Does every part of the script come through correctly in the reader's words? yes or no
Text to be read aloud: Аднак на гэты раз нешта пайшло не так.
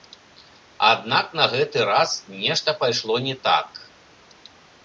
yes